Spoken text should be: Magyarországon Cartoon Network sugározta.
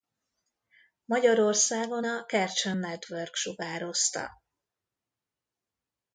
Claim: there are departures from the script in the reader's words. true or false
true